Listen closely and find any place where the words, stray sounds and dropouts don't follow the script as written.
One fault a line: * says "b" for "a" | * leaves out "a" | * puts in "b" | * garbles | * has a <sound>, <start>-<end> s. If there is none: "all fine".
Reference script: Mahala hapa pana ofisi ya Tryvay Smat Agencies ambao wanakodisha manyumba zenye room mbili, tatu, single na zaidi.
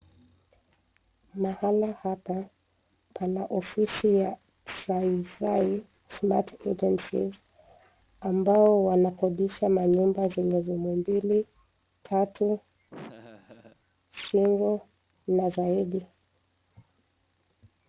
* has a laugh, 12.9-13.8 s